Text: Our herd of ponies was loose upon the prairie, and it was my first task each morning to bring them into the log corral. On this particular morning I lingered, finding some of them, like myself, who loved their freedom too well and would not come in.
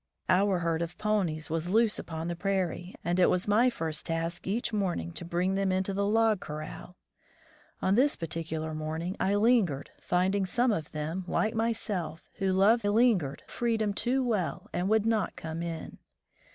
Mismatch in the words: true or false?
true